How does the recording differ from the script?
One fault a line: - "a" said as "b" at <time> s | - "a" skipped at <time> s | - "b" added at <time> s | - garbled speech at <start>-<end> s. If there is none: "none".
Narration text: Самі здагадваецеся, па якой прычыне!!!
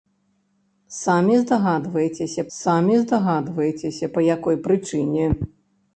- "самі здагадваецеся" added at 2.6 s